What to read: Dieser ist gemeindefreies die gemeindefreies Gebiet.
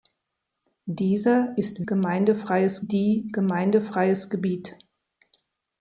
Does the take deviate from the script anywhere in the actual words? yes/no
no